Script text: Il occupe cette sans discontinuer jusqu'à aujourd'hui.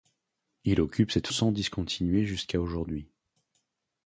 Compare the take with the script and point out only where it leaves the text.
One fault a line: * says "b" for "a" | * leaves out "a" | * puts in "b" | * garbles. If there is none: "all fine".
all fine